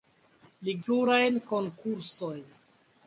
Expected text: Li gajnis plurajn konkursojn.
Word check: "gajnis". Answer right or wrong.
wrong